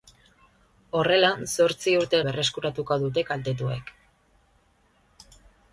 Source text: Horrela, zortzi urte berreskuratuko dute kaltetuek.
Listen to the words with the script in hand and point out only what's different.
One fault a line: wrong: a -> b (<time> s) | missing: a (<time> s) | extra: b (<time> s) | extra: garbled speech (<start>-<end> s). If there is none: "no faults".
no faults